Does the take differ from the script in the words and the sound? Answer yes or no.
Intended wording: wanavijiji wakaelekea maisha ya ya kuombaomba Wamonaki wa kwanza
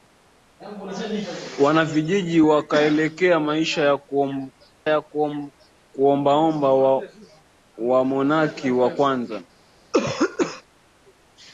yes